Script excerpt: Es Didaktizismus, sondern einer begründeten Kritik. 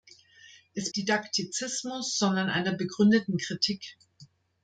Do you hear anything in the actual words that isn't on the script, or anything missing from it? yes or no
no